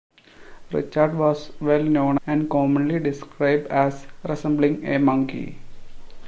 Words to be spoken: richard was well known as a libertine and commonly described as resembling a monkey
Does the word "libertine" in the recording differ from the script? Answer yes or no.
yes